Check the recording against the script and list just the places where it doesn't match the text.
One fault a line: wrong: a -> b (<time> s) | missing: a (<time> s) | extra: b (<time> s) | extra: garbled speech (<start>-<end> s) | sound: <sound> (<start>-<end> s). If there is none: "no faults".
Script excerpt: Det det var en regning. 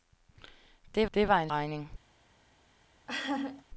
sound: laugh (3.1-3.6 s)